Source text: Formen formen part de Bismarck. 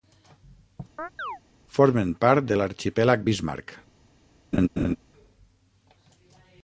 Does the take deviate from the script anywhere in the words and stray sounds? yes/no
yes